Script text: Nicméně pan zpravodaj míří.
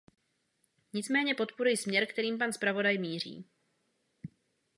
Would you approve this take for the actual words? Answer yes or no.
no